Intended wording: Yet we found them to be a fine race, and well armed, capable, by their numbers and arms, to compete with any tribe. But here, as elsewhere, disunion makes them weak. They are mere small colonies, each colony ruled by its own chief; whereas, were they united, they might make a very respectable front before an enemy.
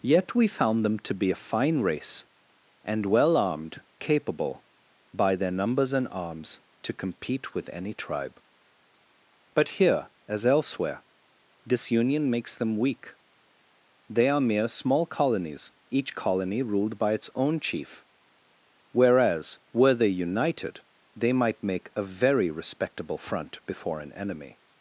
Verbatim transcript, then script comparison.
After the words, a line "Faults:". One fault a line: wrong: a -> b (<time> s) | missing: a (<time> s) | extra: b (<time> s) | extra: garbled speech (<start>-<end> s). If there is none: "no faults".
Yet we found them to be a fine race, and well armed, capable, by their numbers and arms, to compete with any tribe. But here, as elsewhere, disunion makes them weak. They are mere small colonies, each colony ruled by its own chief; whereas, were they united, they might make a very respectable front before an enemy.
Faults:
no faults